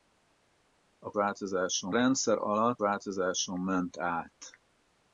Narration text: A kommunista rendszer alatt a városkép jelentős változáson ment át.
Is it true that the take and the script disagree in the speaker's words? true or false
true